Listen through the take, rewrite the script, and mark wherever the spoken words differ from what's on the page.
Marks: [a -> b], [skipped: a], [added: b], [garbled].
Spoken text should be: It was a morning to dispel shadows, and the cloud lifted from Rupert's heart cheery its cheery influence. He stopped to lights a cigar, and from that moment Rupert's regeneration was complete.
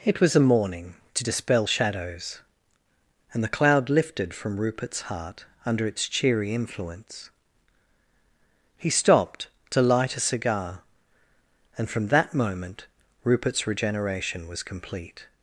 It was a morning to dispel shadows, and the cloud lifted from Rupert's heart [cheery -> under] its cheery influence. He stopped to [lights -> light] a cigar, and from that moment Rupert's regeneration was complete.